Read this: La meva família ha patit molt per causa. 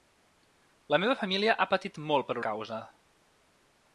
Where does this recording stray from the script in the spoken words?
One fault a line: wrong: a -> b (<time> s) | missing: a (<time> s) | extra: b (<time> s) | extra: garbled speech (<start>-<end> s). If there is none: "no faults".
no faults